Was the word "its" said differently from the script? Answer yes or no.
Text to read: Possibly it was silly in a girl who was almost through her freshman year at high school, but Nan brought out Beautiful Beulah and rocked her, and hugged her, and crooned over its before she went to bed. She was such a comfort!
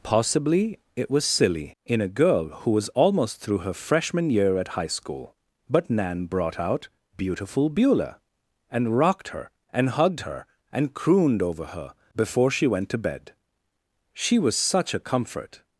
yes